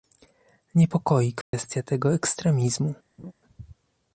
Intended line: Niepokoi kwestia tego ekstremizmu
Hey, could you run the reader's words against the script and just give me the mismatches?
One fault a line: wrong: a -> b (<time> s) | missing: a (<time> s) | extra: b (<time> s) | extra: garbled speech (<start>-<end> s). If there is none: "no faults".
no faults